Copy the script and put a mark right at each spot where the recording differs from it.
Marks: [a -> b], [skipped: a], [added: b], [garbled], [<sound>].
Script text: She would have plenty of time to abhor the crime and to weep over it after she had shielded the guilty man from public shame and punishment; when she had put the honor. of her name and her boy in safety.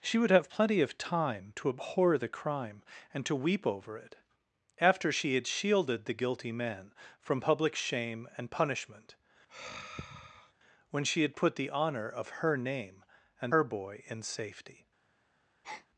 She would have plenty of time to abhor the crime and to weep over it after she had shielded the guilty man from public shame and punishment; [sigh] when she had put the honor. of her name and her boy in safety. [breath]